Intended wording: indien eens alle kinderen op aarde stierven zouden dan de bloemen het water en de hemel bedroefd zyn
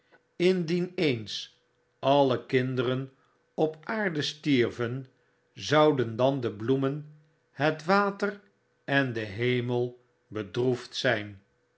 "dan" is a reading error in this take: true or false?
false